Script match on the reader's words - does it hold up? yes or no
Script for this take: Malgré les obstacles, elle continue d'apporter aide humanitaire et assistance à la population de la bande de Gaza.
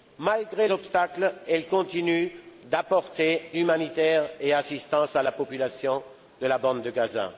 no